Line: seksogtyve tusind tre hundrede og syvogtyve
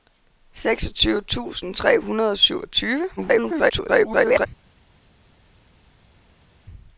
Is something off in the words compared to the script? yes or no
yes